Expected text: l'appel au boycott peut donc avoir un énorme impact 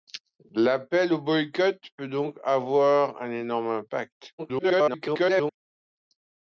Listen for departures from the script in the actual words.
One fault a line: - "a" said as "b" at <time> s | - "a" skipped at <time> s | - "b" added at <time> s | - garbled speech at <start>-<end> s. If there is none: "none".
- garbled speech at 4.4-5.6 s